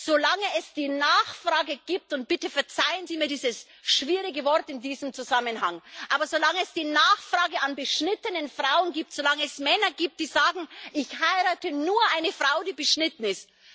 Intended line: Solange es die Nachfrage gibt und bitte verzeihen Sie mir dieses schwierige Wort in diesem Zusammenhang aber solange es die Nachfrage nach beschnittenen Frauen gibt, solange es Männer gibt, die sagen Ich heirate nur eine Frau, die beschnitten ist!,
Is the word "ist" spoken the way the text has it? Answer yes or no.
yes